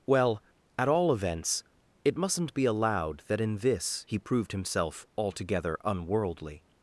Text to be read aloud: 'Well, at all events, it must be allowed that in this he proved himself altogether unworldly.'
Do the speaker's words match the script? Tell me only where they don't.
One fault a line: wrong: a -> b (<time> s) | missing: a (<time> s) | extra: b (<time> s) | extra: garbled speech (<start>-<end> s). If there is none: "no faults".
wrong: must -> mustn't (2.2 s)